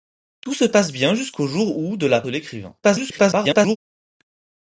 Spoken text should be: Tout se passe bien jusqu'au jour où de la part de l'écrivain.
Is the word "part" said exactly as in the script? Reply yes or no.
no